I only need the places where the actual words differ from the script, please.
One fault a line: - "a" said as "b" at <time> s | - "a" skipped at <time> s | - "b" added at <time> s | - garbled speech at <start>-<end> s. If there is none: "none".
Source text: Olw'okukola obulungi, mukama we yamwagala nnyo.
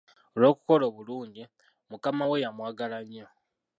none